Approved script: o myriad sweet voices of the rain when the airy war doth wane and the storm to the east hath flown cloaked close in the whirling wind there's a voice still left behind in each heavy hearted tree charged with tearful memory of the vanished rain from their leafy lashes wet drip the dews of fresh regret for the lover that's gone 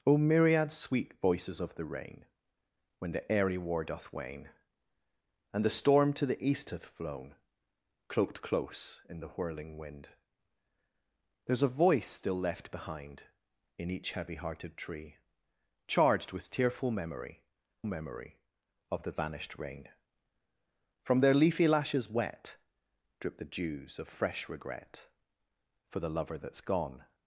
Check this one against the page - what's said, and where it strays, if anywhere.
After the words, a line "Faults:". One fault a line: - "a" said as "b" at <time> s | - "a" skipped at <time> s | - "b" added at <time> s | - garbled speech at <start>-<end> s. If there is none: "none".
o myriad sweet voices of the rain when the airy war doth wane and the storm to the east hath flown cloaked close in the whirling wind there's a voice still left behind in each heavy hearted tree charged with tearful memory memory of the vanished rain from their leafy lashes wet drip the dews of fresh regret for the lover that's gone
Faults:
- "memory" added at 17.9 s